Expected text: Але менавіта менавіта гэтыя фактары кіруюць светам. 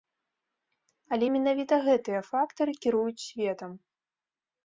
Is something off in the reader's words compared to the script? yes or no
yes